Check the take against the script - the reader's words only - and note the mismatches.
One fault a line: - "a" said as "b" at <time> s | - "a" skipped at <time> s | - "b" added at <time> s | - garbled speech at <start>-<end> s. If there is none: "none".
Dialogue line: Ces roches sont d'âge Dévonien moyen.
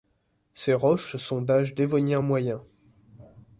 none